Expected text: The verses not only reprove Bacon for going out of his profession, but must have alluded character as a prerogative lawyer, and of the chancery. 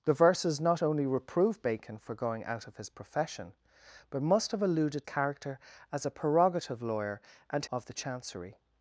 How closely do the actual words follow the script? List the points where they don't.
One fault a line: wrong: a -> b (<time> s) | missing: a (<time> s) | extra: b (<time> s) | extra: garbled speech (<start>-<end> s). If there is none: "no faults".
no faults